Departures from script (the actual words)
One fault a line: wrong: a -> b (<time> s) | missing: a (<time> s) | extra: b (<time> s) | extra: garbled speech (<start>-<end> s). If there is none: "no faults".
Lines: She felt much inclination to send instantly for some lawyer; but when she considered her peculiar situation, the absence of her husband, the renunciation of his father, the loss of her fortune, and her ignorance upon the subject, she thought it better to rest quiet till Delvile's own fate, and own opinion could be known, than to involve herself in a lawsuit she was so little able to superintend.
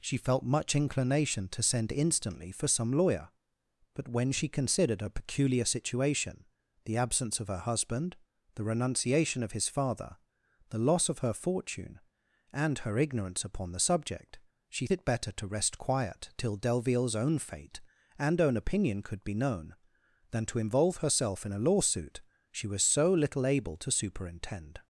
missing: thought (14.9 s)